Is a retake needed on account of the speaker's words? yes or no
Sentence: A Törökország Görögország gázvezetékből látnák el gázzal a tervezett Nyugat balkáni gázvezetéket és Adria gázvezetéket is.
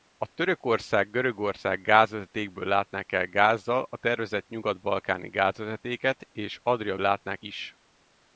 yes